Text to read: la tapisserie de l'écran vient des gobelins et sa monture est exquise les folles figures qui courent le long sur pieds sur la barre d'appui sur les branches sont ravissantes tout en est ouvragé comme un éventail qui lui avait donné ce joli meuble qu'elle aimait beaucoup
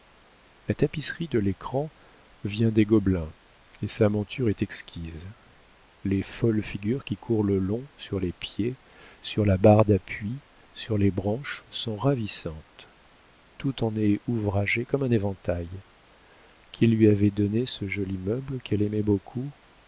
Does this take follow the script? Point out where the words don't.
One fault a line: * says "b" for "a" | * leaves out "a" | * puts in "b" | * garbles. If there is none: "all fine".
* puts in "les"